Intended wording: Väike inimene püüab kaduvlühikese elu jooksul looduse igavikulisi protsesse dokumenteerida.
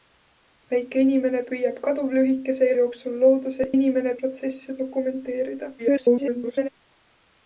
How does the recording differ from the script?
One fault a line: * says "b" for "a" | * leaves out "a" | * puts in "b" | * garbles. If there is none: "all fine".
* leaves out "elu"
* says "inimene" for "igavikulisi"
* garbles